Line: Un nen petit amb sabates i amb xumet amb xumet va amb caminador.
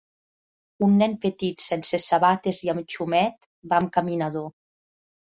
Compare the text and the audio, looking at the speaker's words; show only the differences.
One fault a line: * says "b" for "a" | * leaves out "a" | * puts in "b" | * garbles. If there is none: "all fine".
* says "sense" for "amb"
* leaves out "amb xumet"